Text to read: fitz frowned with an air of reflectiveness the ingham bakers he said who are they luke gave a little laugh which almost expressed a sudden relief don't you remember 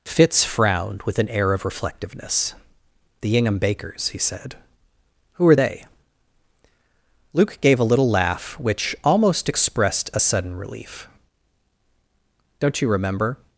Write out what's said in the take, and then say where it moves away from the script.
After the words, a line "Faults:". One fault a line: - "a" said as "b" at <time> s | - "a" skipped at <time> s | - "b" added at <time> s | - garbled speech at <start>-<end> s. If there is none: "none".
fitz frowned with an air of reflectiveness the ingham bakers he said who are they luke gave a little laugh which almost expressed a sudden relief don't you remember
Faults:
none